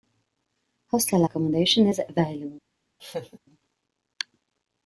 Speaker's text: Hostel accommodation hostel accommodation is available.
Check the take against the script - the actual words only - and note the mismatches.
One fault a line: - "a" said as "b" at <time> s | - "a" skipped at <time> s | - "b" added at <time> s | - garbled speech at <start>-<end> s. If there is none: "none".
- "hostel accommodation" skipped at 1.9 s